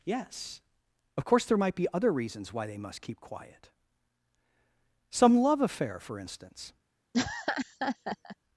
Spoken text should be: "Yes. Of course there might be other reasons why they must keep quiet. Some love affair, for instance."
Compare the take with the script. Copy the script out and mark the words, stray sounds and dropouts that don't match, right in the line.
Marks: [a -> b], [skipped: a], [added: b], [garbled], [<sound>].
"Yes. Of course there might be other reasons why they must keep quiet. Some love affair, for instance." [laugh]